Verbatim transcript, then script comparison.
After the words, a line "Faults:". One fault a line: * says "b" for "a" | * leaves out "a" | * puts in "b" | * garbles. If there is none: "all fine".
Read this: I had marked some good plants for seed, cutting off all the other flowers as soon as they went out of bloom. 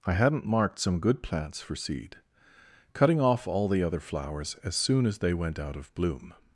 I hadn't marked some good plants for seed, cutting off all the other flowers as soon as they went out of bloom.
Faults:
* says "hadn't" for "had"